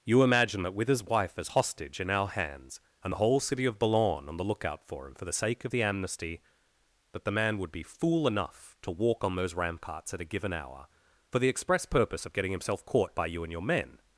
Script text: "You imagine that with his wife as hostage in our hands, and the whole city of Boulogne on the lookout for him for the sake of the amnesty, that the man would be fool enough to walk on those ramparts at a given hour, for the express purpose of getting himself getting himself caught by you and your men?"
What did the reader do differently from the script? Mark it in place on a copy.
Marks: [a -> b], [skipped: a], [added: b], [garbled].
"You imagine that with his wife as hostage in our hands, and the whole city of Boulogne on the lookout for him for the sake of the amnesty, that the man would be fool enough to walk on those ramparts at a given hour, for the express purpose of getting himself [skipped: getting himself] caught by you and your men?"